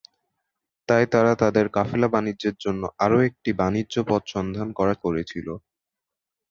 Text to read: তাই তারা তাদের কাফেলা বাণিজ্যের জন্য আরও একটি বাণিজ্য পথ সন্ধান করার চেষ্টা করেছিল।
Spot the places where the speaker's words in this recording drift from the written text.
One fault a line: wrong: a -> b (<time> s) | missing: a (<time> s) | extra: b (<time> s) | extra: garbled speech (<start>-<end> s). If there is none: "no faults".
missing: চেষ্টা (5.0 s)